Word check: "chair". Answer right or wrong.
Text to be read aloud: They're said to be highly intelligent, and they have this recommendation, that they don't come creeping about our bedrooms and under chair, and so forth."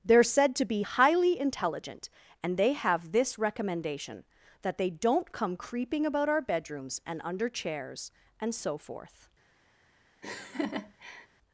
wrong